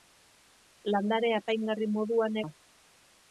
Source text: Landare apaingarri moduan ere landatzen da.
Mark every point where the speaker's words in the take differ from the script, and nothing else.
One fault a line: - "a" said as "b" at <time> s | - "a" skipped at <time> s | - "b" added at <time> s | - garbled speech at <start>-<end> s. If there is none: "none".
- "ere landatzen" skipped at 2.4 s